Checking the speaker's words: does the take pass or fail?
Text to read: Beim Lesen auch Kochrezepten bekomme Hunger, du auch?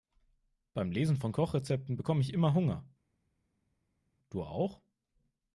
fail